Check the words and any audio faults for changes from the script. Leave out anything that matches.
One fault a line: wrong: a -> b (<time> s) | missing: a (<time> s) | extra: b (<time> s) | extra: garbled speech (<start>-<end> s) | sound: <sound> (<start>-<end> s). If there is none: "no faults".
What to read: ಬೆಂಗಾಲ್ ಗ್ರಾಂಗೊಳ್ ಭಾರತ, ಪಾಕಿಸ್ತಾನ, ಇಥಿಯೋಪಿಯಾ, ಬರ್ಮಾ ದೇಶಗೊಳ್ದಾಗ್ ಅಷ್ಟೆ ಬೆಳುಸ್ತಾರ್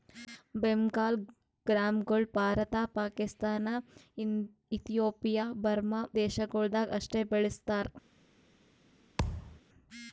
sound: thud (9.2-9.6 s)